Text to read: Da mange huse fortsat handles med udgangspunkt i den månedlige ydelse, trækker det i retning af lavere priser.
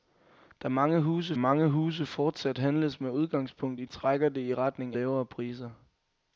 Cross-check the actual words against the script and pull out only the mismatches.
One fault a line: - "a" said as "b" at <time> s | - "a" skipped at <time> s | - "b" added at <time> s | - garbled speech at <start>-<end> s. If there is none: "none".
- "mange huse" added at 1.4 s
- "den månedlige ydelse" skipped at 3.8 s
- "af" skipped at 5.0 s